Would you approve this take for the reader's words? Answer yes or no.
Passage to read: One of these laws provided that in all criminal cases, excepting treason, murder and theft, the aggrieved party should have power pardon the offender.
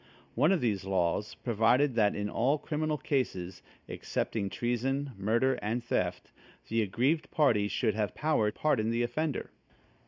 yes